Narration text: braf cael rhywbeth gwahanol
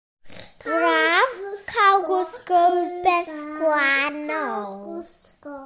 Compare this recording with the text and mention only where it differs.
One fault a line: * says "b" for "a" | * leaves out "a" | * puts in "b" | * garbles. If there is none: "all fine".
* puts in "gwisgo"